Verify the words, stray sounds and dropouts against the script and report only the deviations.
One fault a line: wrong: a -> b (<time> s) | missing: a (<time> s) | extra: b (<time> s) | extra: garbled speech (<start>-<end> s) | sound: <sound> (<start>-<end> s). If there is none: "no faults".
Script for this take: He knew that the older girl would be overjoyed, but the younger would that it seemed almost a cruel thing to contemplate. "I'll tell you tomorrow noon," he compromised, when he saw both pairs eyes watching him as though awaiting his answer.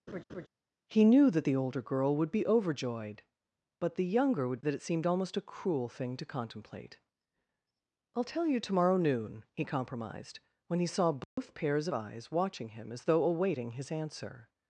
sound: laugh (0.1-0.5 s)
sound: dropout (11.2-11.4 s)